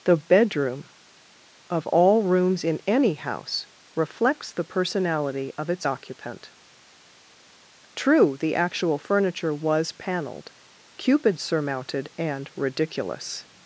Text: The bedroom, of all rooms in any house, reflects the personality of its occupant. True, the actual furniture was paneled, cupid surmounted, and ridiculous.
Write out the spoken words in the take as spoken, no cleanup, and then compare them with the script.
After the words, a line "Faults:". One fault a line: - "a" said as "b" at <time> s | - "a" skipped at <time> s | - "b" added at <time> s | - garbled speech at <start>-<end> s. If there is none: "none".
The bedroom, of all rooms in any house, reflects the personality of its occupant. True, the actual furniture was paneled, cupid surmounted, and ridiculous.
Faults:
none